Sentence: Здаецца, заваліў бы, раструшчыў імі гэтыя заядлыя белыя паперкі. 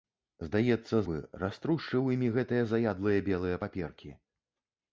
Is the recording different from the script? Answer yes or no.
yes